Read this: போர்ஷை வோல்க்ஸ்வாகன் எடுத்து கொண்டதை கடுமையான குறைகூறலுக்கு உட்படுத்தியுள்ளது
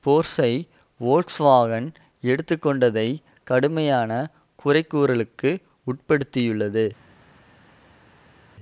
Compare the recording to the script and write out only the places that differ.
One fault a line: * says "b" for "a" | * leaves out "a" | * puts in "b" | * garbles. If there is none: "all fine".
all fine